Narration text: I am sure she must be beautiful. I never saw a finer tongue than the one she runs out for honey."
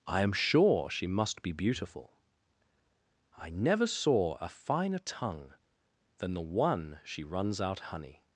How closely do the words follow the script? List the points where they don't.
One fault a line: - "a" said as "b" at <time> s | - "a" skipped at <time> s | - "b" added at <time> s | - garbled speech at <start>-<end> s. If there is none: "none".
- "for" skipped at 7.8 s